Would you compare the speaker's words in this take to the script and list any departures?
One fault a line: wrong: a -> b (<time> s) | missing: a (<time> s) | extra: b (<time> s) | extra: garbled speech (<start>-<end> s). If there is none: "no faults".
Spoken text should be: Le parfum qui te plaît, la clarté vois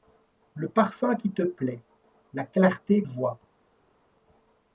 no faults